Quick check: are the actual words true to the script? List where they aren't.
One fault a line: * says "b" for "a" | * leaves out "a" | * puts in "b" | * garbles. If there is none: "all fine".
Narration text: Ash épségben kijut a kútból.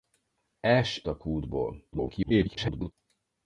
* leaves out "épségben kijut"
* garbles